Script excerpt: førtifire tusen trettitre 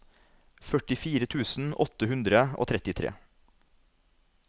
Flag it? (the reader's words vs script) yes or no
yes